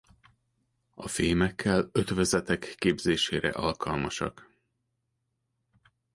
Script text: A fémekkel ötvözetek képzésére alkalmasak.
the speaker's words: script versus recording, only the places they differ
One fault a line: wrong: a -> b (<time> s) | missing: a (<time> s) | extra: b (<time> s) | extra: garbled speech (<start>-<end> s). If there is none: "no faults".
no faults